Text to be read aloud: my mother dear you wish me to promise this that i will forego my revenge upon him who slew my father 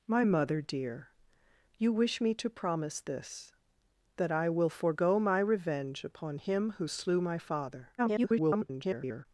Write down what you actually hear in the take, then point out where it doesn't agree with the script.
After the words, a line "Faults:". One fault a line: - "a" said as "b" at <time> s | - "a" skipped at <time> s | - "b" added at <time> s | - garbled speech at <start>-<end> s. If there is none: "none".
my mother dear you wish me to promise this that i will forego my revenge upon him who slew my father [garbled]
Faults:
- garbled speech at 8.0-9.3 s